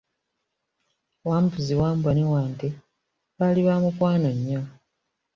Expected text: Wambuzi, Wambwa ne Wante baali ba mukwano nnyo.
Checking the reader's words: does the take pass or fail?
pass